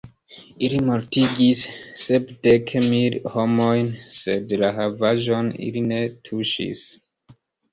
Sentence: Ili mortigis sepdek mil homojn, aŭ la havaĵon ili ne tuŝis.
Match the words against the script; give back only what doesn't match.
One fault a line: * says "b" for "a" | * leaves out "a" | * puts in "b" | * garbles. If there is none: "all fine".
* says "sed" for "aŭ"